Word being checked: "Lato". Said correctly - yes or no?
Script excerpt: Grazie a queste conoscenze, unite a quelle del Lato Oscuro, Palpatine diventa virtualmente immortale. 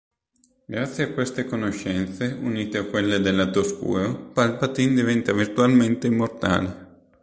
yes